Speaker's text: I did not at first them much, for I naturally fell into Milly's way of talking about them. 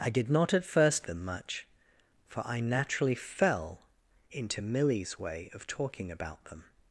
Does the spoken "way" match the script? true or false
true